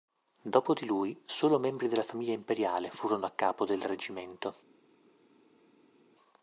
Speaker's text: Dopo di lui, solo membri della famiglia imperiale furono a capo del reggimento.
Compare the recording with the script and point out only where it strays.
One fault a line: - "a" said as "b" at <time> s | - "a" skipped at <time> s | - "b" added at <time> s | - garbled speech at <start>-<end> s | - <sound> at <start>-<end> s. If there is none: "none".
none